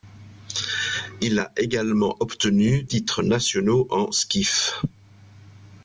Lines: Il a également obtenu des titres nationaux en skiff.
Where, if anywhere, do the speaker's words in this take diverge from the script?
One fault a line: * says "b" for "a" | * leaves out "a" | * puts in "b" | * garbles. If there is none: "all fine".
* leaves out "des"